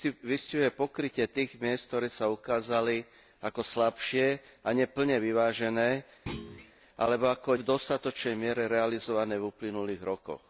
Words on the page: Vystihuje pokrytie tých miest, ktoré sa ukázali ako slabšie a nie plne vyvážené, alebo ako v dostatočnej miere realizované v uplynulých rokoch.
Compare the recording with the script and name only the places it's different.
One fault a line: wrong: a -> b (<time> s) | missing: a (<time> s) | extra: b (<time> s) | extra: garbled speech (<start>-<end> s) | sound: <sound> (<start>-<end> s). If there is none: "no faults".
sound: thud (6.3-6.7 s)